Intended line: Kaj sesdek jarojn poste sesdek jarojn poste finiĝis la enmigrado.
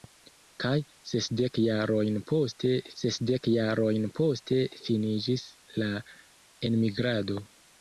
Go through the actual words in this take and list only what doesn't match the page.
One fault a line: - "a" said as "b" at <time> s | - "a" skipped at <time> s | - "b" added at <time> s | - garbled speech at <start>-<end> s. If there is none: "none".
none